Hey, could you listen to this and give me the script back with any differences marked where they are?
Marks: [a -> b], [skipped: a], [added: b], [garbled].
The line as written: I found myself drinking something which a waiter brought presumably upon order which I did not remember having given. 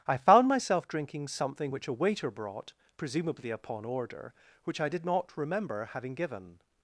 I found myself drinking something which a waiter brought presumably upon order which I did not remember having given.